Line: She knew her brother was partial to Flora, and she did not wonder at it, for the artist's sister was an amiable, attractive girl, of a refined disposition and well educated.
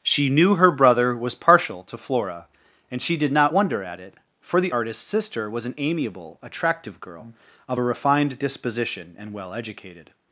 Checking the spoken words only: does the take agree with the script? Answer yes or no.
yes